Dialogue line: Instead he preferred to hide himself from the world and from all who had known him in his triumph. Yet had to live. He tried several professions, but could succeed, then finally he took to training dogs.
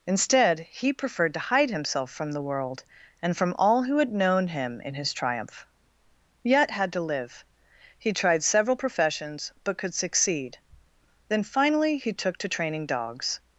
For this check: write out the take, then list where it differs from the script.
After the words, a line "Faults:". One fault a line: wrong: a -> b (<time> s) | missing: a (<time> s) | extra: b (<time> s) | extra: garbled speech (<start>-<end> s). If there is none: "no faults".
Instead he preferred to hide himself from the world and from all who had known him in his triumph. Yet had to live. He tried several professions, but could succeed, then finally he took to training dogs.
Faults:
no faults